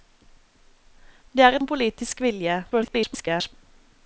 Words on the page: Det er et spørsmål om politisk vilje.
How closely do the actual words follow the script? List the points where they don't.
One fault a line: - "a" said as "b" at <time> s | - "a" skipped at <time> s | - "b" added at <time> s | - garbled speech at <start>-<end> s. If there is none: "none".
- "spørsmål" skipped at 1.6 s
- garbled speech at 2.7-3.5 s